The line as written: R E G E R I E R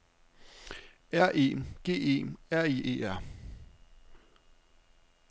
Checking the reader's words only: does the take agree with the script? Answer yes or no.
yes